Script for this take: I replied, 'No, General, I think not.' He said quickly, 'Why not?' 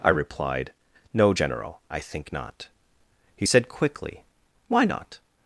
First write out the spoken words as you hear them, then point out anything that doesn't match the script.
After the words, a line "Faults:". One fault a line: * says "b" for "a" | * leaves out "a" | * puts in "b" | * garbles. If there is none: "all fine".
I replied, 'No, General, I think not.' He said quickly, 'Why not?'
Faults:
all fine